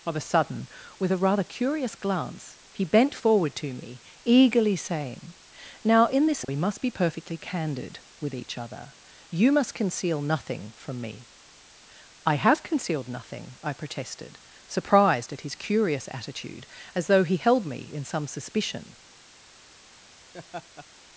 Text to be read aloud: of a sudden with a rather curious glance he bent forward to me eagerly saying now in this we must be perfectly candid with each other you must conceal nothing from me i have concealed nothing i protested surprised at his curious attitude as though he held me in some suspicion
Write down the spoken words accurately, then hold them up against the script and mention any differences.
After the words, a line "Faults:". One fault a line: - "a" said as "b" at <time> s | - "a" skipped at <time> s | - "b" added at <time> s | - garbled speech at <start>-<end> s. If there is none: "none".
of a sudden with a rather curious glance he bent forward to me eagerly saying now in this we must be perfectly candid with each other you must conceal nothing from me i have concealed nothing i protested surprised at his curious attitude as though he held me in some suspicion
Faults:
none